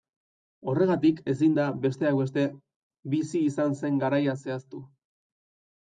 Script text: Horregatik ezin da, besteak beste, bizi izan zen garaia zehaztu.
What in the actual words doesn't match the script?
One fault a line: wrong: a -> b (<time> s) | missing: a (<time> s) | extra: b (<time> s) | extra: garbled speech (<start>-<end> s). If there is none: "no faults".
no faults